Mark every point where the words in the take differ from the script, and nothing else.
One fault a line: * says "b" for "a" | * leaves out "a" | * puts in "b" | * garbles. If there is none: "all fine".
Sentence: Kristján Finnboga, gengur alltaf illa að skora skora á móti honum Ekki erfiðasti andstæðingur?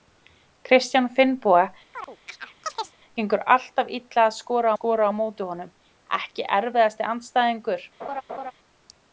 all fine